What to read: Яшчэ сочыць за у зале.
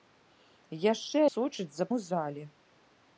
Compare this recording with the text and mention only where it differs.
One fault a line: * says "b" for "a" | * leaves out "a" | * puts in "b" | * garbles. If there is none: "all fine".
all fine